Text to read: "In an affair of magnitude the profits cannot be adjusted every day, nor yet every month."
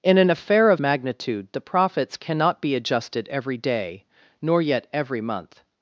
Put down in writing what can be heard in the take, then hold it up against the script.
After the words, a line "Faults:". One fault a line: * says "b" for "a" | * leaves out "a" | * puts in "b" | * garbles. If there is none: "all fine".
"In an affair of magnitude the profits cannot be adjusted every day, nor yet every month."
Faults:
all fine